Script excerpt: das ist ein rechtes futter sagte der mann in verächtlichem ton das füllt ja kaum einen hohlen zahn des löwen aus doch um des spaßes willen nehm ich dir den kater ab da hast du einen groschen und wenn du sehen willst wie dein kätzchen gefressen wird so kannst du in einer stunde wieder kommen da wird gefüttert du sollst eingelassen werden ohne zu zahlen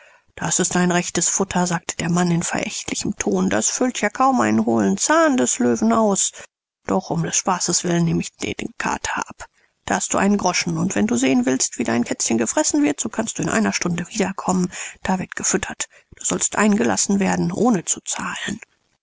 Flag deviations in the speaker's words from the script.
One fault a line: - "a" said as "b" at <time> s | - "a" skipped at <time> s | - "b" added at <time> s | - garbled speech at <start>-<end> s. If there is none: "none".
none